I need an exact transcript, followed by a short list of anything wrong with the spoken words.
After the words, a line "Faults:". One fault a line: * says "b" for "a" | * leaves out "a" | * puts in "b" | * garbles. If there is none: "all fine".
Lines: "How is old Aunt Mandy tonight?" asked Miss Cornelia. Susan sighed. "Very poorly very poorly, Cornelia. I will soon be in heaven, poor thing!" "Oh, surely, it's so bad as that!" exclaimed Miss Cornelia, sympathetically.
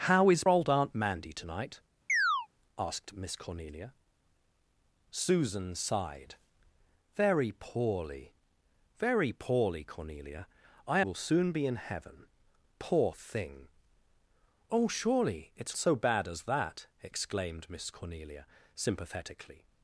"How is old Aunt Mandy tonight?" asked Miss Cornelia. Susan sighed. "Very poorly very poorly, Cornelia. I will soon be in heaven, poor thing!" "Oh, surely, it's so bad as that!" exclaimed Miss Cornelia, sympathetically.
Faults:
all fine